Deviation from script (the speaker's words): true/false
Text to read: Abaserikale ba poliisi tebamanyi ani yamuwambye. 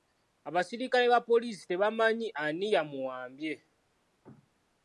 false